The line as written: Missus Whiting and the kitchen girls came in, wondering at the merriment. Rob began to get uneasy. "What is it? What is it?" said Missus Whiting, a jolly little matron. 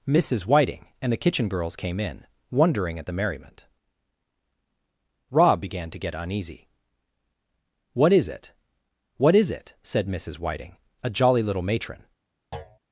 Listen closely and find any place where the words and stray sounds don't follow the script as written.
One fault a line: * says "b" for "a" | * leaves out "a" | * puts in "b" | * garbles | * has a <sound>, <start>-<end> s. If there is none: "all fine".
* has a thud, 12.5-12.8 s